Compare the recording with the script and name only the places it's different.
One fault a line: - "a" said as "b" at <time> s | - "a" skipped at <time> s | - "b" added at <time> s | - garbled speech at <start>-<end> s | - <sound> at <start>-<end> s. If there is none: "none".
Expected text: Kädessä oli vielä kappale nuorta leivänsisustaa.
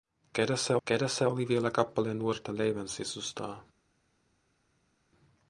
- "kädessä" added at 0.9 s